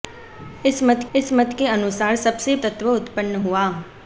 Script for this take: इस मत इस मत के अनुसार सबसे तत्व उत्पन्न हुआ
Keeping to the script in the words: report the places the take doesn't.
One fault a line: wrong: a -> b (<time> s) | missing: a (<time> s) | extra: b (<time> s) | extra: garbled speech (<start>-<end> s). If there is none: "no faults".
no faults